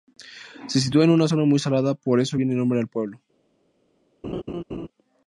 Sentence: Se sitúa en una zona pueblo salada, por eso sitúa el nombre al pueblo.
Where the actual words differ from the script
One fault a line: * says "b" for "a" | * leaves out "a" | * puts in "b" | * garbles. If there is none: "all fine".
* says "muy" for "pueblo"
* says "viene" for "sitúa"